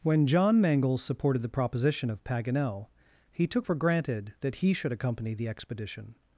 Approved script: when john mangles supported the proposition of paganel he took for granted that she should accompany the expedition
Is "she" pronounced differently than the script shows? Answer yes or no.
yes